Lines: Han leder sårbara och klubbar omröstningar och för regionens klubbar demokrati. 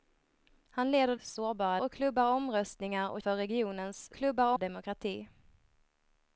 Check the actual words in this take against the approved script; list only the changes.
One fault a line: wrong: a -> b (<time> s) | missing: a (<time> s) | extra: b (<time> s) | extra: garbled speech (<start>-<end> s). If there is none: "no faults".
no faults